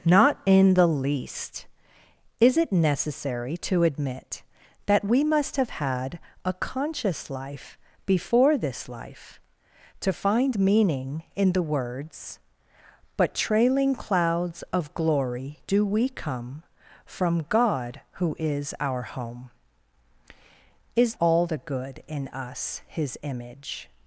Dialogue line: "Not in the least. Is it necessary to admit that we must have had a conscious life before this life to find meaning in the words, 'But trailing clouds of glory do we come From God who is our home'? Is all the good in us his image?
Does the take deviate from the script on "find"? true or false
false